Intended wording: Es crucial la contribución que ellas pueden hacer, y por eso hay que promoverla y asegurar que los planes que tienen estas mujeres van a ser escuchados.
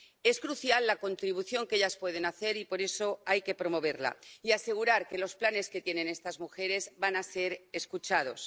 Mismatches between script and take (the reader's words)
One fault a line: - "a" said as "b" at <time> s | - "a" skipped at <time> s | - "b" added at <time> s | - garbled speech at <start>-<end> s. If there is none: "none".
none